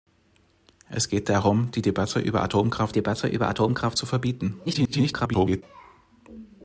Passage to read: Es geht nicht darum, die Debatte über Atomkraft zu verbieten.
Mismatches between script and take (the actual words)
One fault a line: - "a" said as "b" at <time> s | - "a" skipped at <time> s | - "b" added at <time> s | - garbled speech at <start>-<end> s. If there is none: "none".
- "nicht" skipped at 1.3 s
- "Debatte über Atomkraft" added at 2.9 s
- garbled speech at 4.7-5.6 s